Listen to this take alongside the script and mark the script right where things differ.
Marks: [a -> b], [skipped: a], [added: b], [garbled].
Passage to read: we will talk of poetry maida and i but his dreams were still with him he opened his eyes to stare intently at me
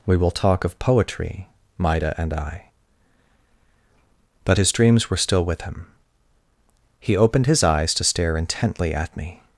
we will talk of poetry maida and i but his dreams were still with him he opened his eyes to stare intently at me